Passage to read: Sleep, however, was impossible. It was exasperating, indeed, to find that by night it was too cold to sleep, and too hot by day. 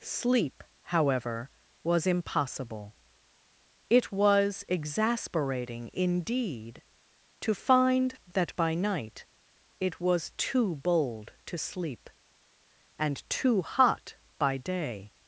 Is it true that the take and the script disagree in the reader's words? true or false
true